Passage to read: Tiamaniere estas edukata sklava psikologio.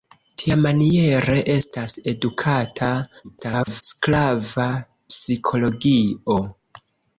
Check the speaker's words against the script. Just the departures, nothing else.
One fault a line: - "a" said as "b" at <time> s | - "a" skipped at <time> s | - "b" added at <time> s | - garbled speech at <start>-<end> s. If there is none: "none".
- garbled speech at 3.2-3.8 s